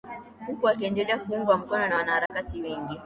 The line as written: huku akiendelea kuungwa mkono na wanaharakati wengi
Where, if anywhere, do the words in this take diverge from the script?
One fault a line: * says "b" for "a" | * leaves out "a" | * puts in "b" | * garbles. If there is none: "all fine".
all fine